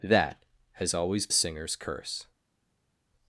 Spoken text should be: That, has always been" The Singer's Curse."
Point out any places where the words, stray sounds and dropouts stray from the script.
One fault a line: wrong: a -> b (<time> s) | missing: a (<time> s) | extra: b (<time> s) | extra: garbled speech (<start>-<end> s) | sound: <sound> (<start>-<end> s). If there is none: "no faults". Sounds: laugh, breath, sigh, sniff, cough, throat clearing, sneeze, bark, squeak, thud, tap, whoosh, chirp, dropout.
missing: been The (1.3 s)